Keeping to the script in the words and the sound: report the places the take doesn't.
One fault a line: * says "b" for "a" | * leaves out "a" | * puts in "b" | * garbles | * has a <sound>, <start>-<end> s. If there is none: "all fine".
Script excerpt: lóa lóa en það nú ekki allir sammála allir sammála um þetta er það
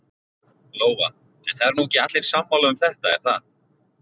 * leaves out "lóa"
* puts in "eru"
* leaves out "allir sammála"